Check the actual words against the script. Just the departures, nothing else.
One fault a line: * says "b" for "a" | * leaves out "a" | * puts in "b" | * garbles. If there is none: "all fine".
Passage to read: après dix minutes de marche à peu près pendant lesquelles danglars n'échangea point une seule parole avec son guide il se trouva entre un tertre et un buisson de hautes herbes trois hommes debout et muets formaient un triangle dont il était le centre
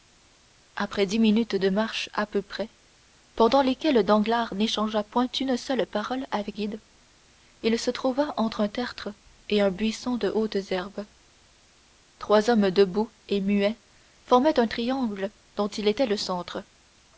* leaves out "son"